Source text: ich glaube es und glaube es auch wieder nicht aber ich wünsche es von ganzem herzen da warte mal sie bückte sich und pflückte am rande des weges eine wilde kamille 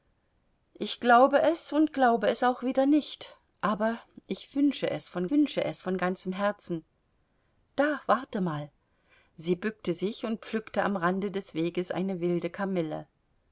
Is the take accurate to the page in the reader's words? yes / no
no